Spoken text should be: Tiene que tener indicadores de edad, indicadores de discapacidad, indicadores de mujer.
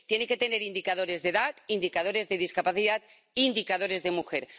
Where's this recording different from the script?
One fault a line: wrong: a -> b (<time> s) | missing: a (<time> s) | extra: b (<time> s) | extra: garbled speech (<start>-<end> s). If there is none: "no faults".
no faults